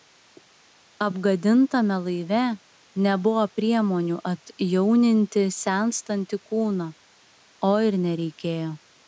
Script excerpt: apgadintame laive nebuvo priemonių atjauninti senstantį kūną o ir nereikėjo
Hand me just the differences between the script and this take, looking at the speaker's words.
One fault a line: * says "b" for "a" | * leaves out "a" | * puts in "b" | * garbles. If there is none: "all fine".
all fine